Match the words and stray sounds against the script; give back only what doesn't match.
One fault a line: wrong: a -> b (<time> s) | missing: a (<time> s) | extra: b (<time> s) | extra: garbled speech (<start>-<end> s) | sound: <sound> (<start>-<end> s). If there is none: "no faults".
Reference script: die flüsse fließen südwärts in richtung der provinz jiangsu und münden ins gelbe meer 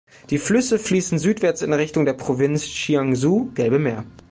missing: und münden ins (3.5 s)